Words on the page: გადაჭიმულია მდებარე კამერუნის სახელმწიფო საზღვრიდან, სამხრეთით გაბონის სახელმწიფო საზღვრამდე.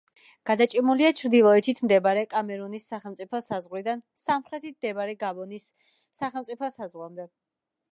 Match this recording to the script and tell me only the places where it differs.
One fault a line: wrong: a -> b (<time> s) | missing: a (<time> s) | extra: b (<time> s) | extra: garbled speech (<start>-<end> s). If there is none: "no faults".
extra: ჩრდილოეთით (1.2 s)
extra: მდებარე (4.8 s)